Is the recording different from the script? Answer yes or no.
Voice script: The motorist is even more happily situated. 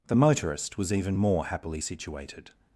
yes